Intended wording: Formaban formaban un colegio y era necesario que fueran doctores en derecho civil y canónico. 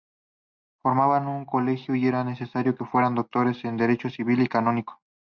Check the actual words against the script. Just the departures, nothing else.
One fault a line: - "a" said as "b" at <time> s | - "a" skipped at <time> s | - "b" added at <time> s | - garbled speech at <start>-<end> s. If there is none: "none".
- "formaban" skipped at 1.3 s